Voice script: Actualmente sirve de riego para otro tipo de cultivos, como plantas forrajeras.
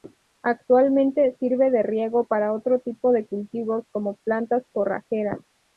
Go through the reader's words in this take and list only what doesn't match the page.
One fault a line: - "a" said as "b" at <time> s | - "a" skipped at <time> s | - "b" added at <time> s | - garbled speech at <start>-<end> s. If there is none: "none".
none